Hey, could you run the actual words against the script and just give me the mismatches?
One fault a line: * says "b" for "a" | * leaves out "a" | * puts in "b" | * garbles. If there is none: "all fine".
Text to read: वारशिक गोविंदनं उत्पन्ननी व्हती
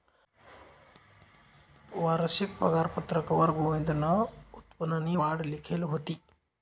* puts in "पगारपत्रकवर"
* puts in "वाढ लिखेल"